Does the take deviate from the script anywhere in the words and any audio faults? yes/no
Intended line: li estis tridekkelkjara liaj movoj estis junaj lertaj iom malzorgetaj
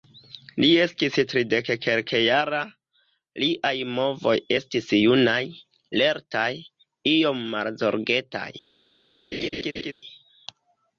yes